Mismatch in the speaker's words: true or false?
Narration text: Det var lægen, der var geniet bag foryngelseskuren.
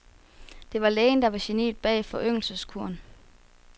false